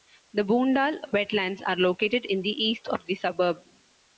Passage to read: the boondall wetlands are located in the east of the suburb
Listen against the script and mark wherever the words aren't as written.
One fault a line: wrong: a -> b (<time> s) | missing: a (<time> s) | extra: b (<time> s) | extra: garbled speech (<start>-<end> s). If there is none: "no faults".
no faults